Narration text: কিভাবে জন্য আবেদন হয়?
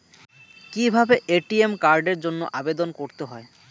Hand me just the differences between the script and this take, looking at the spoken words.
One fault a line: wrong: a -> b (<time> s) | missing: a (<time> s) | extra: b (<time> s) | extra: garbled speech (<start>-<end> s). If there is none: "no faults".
extra: এ.টি.এম কার্ডের (1.3 s)
extra: করতে (3.0 s)